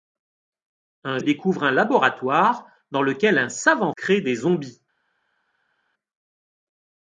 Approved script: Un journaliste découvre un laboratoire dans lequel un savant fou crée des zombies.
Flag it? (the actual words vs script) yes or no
yes